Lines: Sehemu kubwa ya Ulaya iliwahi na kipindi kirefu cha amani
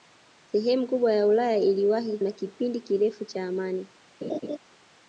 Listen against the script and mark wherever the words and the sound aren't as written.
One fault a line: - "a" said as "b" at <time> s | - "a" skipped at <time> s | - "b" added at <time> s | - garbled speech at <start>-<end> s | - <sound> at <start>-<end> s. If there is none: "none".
- laugh at 4.2-4.6 s